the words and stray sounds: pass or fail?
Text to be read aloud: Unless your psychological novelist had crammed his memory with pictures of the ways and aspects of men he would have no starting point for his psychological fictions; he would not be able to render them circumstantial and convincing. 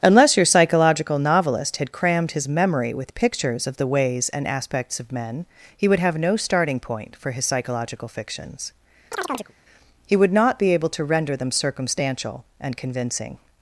fail